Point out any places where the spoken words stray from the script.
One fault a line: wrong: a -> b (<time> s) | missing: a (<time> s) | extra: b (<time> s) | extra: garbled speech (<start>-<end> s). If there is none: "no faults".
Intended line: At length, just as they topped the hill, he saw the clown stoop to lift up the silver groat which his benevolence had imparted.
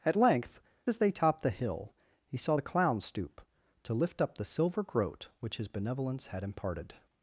missing: just (0.6 s)